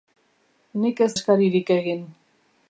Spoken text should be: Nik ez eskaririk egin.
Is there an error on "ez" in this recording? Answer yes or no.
no